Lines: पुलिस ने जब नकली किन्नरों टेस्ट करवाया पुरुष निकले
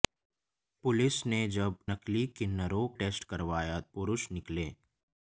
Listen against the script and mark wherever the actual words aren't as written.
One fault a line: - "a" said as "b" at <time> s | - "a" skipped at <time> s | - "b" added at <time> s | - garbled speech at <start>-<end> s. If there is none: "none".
none